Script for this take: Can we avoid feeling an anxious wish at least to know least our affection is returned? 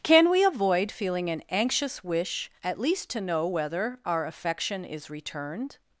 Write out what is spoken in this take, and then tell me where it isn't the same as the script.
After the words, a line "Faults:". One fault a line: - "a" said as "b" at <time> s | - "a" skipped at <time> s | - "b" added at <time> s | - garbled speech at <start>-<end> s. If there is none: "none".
Can we avoid feeling an anxious wish at least to know whether our affection is returned?
Faults:
- "least" said as "whether" at 3.5 s